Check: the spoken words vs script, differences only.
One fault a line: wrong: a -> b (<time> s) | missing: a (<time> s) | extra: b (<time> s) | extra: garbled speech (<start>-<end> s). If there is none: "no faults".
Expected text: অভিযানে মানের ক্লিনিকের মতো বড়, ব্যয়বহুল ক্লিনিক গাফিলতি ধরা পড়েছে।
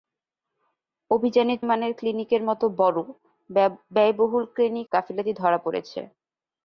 no faults